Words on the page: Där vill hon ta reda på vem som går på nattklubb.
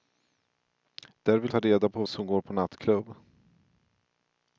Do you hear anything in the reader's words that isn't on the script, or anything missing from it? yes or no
yes